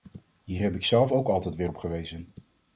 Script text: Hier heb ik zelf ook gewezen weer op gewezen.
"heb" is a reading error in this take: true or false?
false